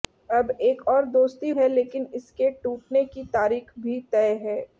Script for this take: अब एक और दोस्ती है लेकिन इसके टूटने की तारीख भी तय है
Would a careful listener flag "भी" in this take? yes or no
no